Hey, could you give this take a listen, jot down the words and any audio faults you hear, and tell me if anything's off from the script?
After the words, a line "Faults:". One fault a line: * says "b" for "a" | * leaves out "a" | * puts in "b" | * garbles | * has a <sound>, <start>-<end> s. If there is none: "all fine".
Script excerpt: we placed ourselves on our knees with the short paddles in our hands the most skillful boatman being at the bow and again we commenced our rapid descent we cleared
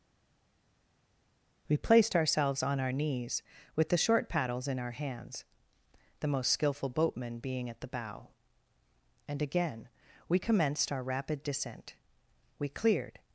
we placed ourselves on our knees with the short paddles in our hands the most skillful boatman being at the bow and again we commenced our rapid descent we cleared
Faults:
all fine